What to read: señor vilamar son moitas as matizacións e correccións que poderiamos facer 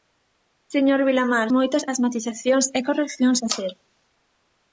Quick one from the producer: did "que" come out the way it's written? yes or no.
no